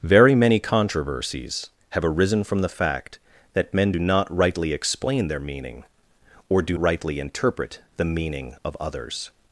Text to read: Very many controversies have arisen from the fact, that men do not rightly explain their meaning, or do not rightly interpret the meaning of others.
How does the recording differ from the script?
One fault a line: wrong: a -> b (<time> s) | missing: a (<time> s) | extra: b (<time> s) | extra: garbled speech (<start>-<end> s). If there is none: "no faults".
missing: not (6.8 s)